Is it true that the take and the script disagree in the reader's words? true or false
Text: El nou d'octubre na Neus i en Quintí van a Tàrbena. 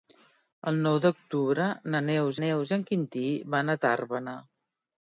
true